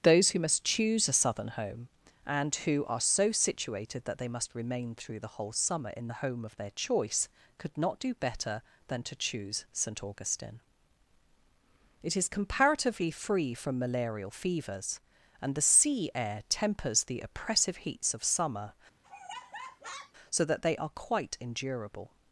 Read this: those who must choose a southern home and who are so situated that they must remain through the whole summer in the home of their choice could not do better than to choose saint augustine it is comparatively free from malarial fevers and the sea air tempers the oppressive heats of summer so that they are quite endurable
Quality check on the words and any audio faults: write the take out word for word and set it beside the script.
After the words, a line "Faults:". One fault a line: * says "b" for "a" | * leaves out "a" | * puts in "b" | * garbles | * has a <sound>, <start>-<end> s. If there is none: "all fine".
those who must choose a southern home and who are so situated that they must remain through the whole summer in the home of their choice could not do better than to choose saint augustine it is comparatively free from malarial fevers and the sea air tempers the oppressive heats of summer so that they are quite endurable
Faults:
* has a laugh, 19.0-20.1 s